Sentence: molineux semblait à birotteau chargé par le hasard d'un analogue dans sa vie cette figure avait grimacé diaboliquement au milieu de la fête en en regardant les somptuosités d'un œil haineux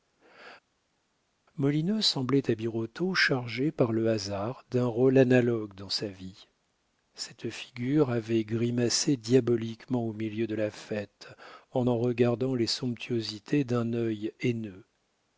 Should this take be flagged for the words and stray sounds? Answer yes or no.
yes